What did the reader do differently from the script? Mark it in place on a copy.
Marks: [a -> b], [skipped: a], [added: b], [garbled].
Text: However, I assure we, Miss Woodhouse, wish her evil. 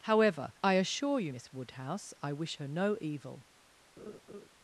However, I assure [we, -> you] Miss Woodhouse, [added: I] wish her [added: no] evil.